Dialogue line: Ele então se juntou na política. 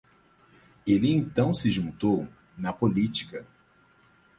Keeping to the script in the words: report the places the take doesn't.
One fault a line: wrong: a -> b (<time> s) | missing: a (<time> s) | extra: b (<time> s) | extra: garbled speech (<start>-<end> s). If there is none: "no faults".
no faults